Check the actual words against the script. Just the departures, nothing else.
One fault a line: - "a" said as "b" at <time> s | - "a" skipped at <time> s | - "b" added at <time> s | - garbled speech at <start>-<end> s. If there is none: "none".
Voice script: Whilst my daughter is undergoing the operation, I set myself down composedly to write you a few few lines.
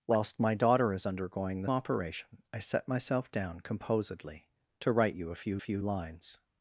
none